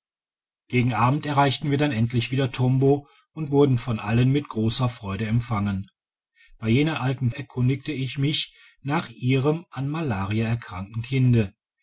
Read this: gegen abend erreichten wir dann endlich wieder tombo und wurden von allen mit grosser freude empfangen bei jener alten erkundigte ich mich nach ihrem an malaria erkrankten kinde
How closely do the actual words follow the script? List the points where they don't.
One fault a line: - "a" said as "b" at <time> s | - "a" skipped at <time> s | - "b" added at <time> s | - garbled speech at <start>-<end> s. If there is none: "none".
none